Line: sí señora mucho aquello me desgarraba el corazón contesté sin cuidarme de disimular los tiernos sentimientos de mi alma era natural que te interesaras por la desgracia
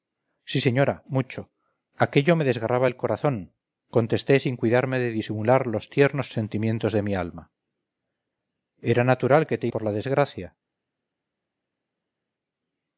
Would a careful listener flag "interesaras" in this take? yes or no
yes